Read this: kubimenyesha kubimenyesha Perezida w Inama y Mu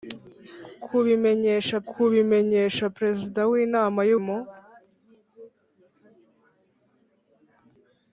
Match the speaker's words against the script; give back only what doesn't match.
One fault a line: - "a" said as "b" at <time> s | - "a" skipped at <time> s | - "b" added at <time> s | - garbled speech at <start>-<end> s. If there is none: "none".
none